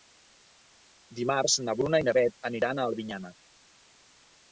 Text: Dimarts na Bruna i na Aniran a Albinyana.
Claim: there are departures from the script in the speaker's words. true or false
true